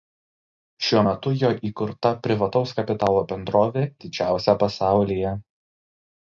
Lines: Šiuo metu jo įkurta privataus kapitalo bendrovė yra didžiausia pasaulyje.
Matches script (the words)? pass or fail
fail